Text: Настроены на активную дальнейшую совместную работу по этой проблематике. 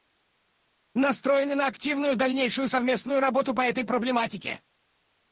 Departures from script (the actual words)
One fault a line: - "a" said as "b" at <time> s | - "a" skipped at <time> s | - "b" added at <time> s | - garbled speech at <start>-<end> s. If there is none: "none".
none